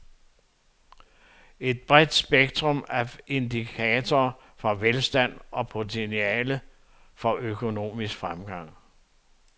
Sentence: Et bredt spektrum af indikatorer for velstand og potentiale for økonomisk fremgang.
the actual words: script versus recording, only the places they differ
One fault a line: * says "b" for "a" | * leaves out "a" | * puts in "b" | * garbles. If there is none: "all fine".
all fine